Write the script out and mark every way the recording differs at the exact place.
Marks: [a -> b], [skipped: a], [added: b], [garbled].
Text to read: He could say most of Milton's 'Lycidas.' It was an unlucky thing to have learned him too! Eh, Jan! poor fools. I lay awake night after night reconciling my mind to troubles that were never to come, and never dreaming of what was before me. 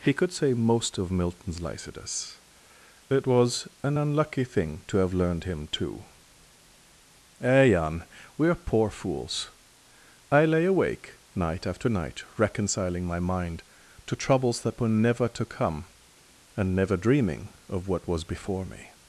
He could say most of Milton's 'Lycidas.' It was an unlucky thing to have learned him too! Eh, Jan! [added: we're] poor fools. I lay awake night after night reconciling my mind to troubles that were never to come, and never dreaming of what was before me.